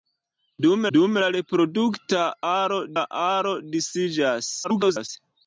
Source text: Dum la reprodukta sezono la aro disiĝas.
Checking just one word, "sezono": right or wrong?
wrong